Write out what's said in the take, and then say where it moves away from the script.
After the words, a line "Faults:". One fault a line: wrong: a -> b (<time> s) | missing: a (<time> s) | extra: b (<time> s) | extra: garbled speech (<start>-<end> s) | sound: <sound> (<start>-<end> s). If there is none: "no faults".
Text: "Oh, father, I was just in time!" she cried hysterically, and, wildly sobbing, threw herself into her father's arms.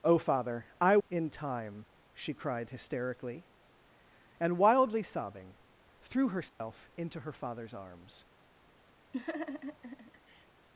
"Oh, father, I in time!" she cried hysterically, and, wildly sobbing, threw herself into her father's arms.
Faults:
missing: was just (1.0 s)
sound: dropout (6.5-6.6 s)
sound: laugh (9.1-10.5 s)